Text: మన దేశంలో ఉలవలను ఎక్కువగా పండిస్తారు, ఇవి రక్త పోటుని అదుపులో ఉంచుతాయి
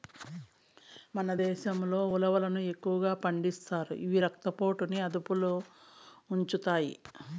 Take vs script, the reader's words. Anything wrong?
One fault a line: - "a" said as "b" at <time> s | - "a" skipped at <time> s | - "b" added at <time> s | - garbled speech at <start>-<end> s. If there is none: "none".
none